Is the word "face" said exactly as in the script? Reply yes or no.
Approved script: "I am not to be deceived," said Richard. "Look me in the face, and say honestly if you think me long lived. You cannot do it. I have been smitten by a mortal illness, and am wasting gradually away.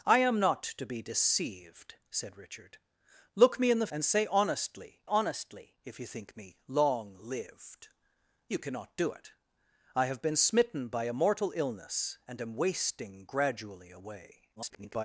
no